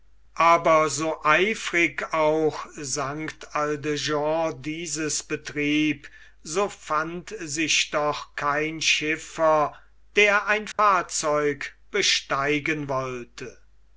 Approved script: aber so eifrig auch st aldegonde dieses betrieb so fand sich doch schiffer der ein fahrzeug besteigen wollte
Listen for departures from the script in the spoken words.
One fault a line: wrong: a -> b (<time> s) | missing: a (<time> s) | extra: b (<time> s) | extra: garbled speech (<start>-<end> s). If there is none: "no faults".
extra: kein (8.3 s)